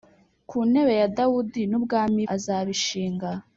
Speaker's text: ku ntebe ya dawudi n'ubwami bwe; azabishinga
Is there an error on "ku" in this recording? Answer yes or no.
no